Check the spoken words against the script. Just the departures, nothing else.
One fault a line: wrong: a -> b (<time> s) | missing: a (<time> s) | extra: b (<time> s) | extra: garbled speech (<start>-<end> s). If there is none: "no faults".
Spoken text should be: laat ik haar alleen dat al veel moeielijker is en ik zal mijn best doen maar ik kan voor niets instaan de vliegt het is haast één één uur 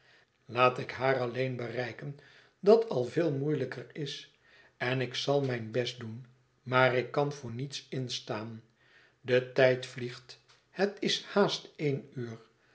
extra: bereiken (1.6 s)
extra: tijd (9.5 s)
missing: één (12.1 s)